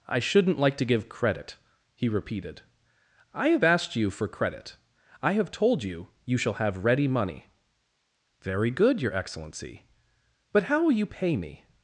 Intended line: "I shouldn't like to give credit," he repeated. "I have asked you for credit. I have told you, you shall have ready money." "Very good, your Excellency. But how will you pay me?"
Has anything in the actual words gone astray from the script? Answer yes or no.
no